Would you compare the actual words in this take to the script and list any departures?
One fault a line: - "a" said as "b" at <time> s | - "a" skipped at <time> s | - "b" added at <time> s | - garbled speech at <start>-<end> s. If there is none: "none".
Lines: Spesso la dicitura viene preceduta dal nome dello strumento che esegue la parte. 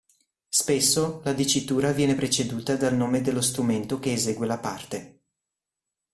none